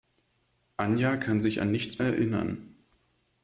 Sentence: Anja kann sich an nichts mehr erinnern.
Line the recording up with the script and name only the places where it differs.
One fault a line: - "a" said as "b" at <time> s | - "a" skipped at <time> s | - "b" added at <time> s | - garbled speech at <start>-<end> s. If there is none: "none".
- "mehr" skipped at 2.0 s